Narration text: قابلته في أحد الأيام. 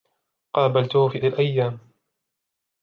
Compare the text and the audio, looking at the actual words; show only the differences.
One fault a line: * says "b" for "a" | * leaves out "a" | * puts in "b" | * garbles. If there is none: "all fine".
* leaves out "أحد"